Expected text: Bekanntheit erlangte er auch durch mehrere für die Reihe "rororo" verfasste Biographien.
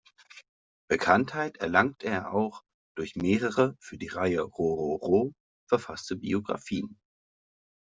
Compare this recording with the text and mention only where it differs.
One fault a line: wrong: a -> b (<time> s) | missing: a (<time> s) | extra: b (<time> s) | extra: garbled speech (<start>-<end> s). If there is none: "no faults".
no faults